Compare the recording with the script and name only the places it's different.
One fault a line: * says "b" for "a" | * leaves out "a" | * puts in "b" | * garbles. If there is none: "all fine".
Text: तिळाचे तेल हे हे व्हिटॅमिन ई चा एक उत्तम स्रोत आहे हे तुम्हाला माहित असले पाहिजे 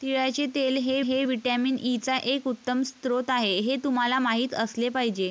all fine